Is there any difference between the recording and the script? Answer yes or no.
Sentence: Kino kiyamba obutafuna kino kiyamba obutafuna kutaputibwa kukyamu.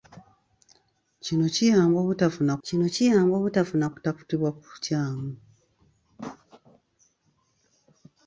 no